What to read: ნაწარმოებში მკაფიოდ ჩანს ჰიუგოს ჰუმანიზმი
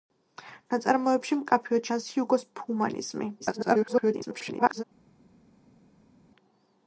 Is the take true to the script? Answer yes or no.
no